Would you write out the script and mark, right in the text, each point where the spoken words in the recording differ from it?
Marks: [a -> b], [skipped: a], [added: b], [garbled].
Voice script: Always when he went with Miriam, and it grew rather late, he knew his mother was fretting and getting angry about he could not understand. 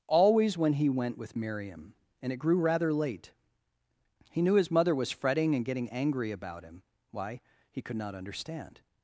Always when he went with Miriam, and it grew rather late, he knew his mother was fretting and getting angry about [added: him why] he could not understand.